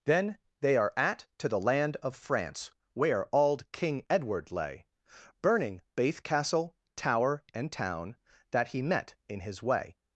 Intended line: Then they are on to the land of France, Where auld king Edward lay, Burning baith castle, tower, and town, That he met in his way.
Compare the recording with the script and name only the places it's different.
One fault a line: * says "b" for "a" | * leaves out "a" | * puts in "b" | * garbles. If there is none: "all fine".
* says "at" for "on"